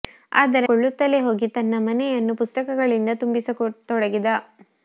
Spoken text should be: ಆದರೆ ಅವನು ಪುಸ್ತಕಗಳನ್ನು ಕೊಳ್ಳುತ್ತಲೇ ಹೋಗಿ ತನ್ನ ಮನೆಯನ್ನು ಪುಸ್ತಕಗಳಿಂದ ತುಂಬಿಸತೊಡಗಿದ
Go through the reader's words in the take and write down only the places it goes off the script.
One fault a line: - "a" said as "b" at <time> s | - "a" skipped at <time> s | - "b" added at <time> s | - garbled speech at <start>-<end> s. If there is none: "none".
- "ಅವನು ಪುಸ್ತಕಗಳನ್ನು" skipped at 0.7 s